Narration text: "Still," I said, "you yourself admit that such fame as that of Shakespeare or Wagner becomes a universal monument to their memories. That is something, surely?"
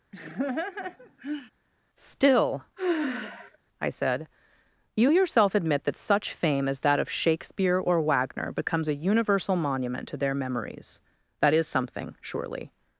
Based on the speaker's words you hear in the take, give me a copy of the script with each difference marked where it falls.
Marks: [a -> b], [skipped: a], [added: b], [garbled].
"Still," I said, "you yourself admit that such fame as that of Shakespeare or Wagner becomes a universal monument to their memories. That is something, surely?"